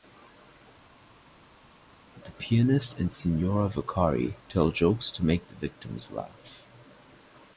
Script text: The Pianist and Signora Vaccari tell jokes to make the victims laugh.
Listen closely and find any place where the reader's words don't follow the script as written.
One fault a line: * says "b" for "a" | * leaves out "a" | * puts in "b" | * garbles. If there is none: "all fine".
all fine